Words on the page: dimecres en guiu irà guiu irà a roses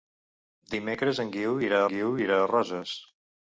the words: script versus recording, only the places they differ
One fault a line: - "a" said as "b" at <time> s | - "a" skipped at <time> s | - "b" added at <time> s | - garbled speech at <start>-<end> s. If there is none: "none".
none